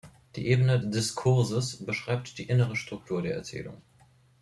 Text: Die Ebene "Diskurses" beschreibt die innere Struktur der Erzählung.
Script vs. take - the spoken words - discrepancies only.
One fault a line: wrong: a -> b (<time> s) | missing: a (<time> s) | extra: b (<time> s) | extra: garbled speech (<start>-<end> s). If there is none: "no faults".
no faults